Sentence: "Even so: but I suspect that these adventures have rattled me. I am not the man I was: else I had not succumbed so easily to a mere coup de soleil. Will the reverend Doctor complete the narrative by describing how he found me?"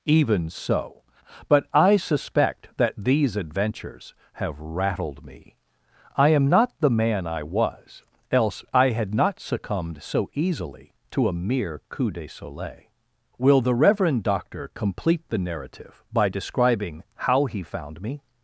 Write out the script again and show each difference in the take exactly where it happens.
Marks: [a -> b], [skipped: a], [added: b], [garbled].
"Even so: but I suspect that these adventures have rattled me. I am not the man I was: else I had not succumbed so easily to a mere coup de soleil. Will the reverend Doctor complete the narrative by describing how he found me?"